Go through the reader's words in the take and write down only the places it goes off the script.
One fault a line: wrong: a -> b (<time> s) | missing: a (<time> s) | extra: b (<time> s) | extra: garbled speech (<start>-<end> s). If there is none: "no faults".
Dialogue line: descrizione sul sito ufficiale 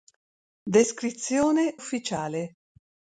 missing: sul sito (1.8 s)